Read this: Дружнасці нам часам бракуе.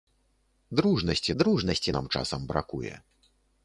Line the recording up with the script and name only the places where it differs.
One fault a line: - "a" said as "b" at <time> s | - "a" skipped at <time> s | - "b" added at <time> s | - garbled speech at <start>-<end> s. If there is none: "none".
- "дружнасці" added at 1.4 s